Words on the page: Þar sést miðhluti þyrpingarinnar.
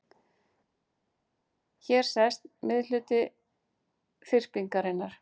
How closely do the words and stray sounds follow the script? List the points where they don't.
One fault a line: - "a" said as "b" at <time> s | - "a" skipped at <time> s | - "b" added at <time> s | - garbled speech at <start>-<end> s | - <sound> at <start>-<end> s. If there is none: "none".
- "Þar" said as "Hér" at 1.9 s